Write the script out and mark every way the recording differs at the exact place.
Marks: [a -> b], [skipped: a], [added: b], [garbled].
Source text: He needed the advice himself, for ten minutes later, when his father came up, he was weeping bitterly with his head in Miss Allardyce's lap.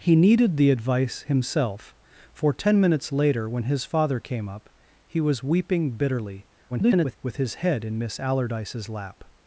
He needed the advice himself, for ten minutes later, when his father came up, he was weeping bitterly [garbled] with his head in Miss Allardyce's lap.